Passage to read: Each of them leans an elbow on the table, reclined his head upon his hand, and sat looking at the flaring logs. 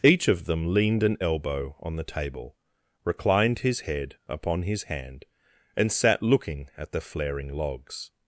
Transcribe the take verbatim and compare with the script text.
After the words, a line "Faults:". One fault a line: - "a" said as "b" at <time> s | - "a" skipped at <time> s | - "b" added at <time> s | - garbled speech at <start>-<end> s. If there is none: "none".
Each of them leaned an elbow on the table, reclined his head upon his hand, and sat looking at the flaring logs.
Faults:
- "leans" said as "leaned" at 0.7 s